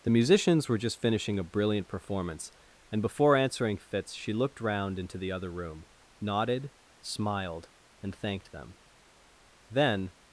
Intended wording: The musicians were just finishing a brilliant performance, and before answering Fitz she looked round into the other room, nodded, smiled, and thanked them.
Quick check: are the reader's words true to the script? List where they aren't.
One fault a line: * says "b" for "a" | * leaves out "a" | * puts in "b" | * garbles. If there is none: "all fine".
* puts in "Then"